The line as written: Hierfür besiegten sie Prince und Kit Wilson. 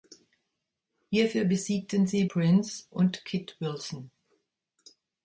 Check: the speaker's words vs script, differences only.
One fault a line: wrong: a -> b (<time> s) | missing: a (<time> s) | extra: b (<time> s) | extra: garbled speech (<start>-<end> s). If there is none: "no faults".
no faults